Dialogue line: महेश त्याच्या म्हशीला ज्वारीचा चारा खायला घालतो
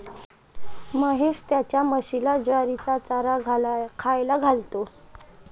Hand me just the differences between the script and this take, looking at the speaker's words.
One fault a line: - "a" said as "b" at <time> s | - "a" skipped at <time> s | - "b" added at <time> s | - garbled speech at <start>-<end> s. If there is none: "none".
none